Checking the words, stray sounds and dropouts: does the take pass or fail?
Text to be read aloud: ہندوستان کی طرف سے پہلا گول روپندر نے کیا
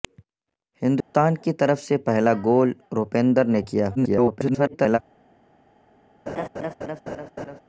fail